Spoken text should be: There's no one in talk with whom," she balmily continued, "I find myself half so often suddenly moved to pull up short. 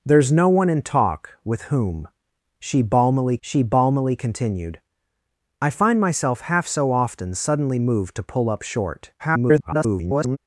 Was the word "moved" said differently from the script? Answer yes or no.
no